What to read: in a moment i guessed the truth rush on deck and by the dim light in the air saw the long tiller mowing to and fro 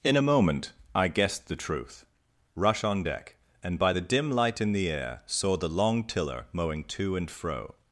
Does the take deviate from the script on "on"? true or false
false